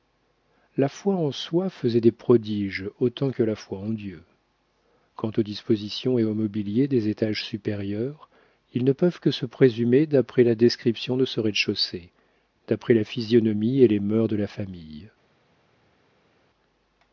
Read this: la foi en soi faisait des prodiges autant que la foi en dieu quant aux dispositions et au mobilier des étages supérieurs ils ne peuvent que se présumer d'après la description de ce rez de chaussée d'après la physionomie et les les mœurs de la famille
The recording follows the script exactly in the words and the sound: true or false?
false